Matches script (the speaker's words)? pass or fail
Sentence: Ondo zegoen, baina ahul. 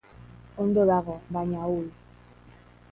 fail